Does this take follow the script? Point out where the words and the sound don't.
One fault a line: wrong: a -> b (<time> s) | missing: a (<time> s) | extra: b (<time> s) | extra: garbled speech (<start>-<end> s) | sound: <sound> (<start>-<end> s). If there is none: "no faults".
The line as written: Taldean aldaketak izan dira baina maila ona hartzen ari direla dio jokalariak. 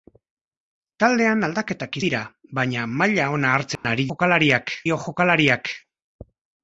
missing: izan (2.0 s)
sound: dropout (3.8-3.8 s)
wrong: direla -> jokalariak (4.1 s)